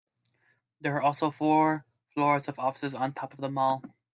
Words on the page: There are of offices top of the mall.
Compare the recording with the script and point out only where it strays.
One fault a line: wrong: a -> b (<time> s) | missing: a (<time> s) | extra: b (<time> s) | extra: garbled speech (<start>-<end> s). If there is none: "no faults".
extra: also four floors (1.0 s)
extra: on (2.9 s)